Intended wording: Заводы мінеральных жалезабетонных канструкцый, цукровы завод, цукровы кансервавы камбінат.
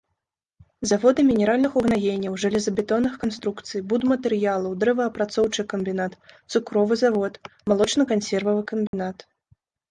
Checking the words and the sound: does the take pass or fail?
fail